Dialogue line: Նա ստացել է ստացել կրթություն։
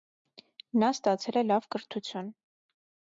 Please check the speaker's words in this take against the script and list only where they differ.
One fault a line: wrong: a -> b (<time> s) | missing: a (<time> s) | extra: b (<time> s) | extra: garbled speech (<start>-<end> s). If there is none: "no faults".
wrong: ստացել -> լավ (1.5 s)